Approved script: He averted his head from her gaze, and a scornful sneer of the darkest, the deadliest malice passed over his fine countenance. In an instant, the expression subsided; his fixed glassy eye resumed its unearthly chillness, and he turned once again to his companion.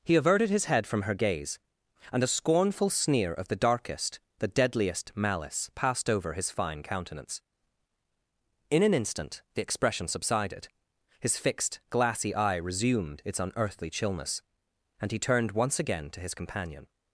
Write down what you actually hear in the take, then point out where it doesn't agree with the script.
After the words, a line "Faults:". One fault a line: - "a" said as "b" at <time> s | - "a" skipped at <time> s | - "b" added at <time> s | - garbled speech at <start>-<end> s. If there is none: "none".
He averted his head from her gaze, and a scornful sneer of the darkest, the deadliest malice passed over his fine countenance. In an instant, the expression subsided; his fixed glassy eye resumed its unearthly chillness, and he turned once again to his companion.
Faults:
none